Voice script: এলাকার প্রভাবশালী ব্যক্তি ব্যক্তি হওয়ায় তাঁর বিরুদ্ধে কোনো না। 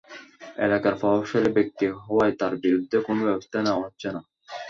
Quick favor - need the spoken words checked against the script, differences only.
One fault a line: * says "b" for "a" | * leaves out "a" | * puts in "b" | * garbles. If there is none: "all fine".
* leaves out "ব্যক্তি"
* puts in "ব্যবস্থা নেওয়া হচ্ছে"